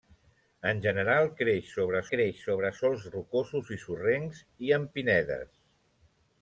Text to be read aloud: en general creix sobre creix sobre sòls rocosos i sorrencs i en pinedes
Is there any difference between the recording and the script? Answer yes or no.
no